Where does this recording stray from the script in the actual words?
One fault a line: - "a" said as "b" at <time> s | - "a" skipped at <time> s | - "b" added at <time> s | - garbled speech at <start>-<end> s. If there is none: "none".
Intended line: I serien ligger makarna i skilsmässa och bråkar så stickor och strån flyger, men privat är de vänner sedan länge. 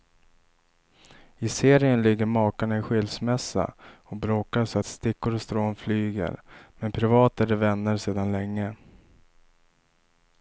none